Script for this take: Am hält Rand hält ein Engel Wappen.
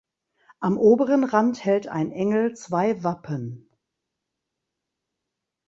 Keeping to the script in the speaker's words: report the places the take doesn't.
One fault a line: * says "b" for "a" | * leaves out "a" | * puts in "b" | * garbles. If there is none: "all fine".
* says "oberen" for "hält"
* puts in "zwei"